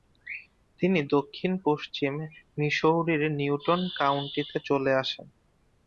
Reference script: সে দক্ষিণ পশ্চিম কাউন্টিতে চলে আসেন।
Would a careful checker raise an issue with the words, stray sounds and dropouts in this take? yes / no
yes